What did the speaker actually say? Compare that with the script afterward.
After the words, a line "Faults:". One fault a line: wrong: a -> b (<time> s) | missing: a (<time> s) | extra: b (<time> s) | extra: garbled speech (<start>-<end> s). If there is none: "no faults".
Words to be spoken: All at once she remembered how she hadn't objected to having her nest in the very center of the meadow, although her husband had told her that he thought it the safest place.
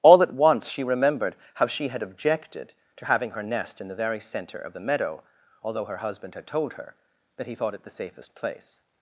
All at once she remembered how she had objected to having her nest in the very center of the meadow, although her husband had told her that he thought it the safest place.
Faults:
wrong: hadn't -> had (1.9 s)